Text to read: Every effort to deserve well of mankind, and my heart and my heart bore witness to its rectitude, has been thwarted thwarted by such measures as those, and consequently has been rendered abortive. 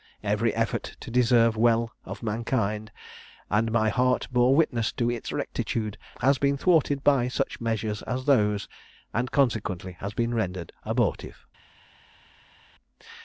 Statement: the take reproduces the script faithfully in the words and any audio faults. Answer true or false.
false